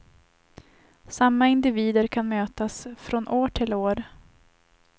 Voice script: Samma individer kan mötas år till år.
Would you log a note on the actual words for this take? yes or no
yes